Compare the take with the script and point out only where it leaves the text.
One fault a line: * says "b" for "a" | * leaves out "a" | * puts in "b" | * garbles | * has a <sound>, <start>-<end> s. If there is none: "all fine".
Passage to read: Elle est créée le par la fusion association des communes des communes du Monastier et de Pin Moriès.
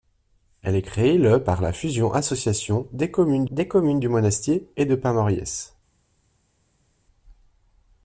all fine